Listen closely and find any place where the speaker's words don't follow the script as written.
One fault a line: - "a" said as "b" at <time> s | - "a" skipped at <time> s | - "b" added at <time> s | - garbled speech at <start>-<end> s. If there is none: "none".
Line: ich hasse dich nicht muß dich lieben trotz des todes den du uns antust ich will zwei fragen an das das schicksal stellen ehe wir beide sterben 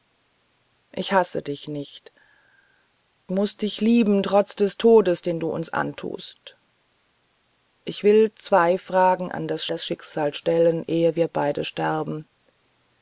none